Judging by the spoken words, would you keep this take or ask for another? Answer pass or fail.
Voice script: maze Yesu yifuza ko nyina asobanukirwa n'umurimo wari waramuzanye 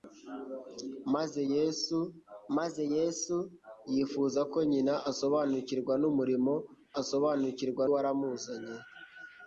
fail